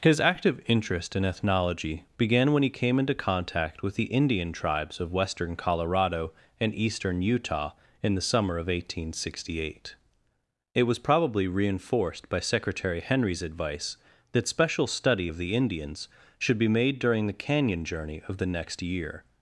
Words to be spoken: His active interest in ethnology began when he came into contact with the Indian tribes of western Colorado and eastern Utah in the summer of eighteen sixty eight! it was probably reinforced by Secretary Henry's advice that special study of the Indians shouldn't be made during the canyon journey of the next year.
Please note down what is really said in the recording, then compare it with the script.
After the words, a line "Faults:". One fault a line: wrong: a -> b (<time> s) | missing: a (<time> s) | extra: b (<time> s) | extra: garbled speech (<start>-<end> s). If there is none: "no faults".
His active interest in ethnology began when he came into contact with the Indian tribes of western Colorado and eastern Utah in the summer of eighteen sixty eight! it was probably reinforced by Secretary Henry's advice that special study of the Indians should be made during the canyon journey of the next year.
Faults:
wrong: shouldn't -> should (16.4 s)